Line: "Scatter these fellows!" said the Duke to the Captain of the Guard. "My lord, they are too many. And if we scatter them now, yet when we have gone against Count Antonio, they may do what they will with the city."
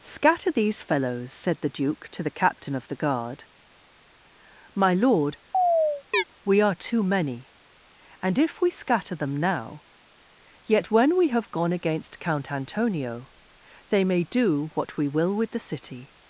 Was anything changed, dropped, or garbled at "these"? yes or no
no